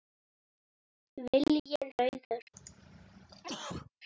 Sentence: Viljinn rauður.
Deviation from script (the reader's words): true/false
false